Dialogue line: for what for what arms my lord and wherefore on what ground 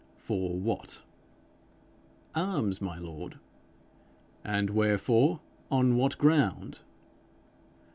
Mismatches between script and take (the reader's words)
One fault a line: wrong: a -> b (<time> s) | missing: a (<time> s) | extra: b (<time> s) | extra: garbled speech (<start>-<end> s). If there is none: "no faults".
missing: for what (1.0 s)